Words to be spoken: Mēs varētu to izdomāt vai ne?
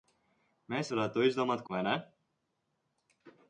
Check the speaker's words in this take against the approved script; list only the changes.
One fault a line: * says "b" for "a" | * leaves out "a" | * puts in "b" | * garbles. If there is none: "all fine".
all fine